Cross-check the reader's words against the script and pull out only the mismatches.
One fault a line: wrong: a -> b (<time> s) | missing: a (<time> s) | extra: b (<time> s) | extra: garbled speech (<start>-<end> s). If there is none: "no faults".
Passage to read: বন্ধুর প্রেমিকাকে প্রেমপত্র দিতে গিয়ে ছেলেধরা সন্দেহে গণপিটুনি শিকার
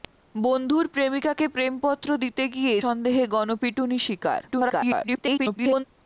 missing: ছেলেধরা (2.7 s)
extra: garbled speech (4.5-5.8 s)